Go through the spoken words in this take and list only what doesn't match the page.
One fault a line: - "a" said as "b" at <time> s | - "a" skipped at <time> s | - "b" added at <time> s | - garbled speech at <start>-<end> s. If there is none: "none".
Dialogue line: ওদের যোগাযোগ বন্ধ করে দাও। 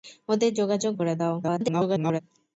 - "বন্ধ" skipped at 0.9 s
- garbled speech at 1.4-2.2 s